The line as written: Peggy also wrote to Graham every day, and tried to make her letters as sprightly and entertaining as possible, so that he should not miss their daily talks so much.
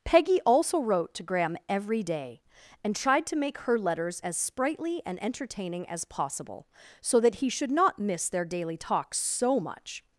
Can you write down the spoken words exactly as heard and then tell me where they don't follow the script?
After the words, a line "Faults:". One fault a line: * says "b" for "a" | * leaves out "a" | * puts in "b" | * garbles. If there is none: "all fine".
Peggy also wrote to Graham every day, and tried to make her letters as sprightly and entertaining as possible, so that he should not miss their daily talks so much.
Faults:
all fine